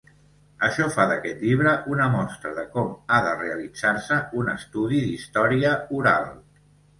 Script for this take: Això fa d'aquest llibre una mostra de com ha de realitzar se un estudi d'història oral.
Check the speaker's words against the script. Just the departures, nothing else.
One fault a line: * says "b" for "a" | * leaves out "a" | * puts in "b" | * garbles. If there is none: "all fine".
all fine